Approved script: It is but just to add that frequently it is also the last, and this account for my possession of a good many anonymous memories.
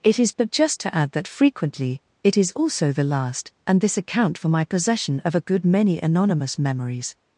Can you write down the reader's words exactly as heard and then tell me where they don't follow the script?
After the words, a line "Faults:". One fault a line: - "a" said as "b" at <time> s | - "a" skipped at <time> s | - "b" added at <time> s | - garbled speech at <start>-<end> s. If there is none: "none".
It is but just to add that frequently it is also the last, and this account for my possession of a good many anonymous memories.
Faults:
none